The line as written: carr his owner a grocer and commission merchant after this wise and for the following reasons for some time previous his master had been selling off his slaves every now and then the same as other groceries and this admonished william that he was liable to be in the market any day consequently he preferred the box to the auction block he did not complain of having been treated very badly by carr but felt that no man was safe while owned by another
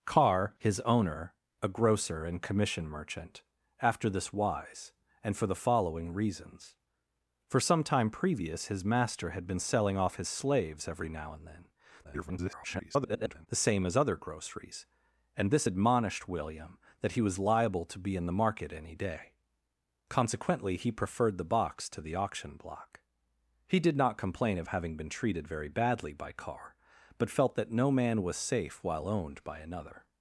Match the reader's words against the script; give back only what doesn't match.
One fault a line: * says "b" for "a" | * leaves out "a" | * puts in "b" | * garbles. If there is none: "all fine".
* garbles